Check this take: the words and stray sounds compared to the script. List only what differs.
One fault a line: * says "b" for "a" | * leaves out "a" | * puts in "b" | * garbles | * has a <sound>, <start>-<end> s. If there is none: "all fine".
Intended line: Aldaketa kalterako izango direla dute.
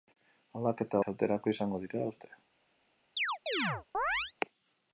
* has a chirp, 3.2-4.3 s